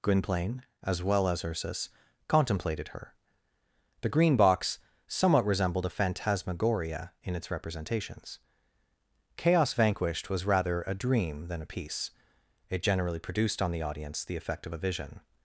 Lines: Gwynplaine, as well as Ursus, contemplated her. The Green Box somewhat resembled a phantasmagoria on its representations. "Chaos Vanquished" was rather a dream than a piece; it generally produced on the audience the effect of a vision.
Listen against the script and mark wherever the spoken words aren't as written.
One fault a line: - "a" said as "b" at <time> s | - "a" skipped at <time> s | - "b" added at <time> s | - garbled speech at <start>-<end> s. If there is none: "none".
- "on" said as "in" at 7.2 s